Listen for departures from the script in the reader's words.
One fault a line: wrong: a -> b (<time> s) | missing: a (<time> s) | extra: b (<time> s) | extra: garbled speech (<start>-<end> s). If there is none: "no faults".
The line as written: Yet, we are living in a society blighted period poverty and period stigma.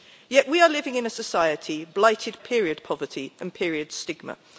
no faults